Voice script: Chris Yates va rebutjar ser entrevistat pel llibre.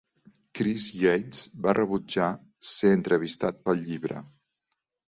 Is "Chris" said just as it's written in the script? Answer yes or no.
yes